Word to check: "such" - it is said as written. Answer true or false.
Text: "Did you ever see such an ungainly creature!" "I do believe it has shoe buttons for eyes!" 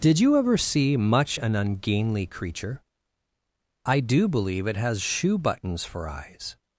false